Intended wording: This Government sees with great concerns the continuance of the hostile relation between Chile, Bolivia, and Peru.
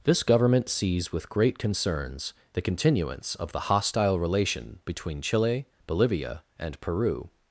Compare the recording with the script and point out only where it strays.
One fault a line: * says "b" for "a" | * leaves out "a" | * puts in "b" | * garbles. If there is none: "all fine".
all fine